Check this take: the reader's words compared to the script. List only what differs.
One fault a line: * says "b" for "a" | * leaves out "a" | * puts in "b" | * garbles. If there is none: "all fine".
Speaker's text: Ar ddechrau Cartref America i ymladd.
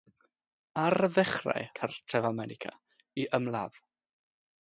all fine